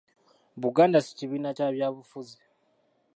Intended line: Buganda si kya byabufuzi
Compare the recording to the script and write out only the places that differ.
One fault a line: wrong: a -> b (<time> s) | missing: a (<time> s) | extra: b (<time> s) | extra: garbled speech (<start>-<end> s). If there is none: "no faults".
extra: kibiina (1.2 s)